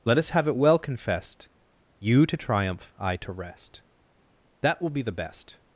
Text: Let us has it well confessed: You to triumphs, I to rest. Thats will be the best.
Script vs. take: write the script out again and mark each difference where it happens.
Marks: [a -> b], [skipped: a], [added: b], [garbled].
Let us [has -> have] it well confessed: You to [triumphs, -> triumph] I to rest. [Thats -> That] will be the best.